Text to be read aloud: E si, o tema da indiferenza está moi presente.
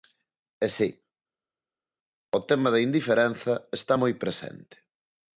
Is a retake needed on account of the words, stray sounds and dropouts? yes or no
no